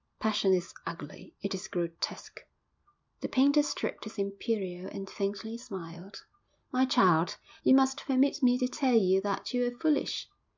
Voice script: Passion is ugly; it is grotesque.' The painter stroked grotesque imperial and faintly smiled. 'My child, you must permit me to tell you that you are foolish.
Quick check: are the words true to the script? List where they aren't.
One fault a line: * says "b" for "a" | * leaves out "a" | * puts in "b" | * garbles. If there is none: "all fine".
* says "his" for "grotesque"